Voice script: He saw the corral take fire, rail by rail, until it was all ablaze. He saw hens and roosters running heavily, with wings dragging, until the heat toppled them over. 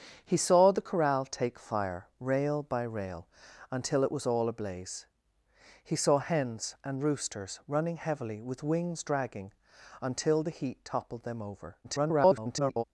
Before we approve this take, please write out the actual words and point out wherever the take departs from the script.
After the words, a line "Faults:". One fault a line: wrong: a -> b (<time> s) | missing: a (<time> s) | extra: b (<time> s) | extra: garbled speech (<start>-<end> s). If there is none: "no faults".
He saw the corral take fire, rail by rail, until it was all ablaze. He saw hens and roosters running heavily, with wings dragging, until the heat toppled them over. [garbled]
Faults:
extra: garbled speech (11.8-12.8 s)